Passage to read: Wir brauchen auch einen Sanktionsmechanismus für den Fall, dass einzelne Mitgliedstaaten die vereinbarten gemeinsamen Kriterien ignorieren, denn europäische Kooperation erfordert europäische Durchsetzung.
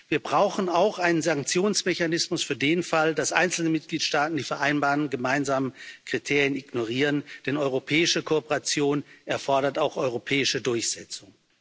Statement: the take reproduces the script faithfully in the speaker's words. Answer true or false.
false